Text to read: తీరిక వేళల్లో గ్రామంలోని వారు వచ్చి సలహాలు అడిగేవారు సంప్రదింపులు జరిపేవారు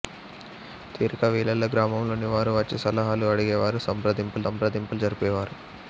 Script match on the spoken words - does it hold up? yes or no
no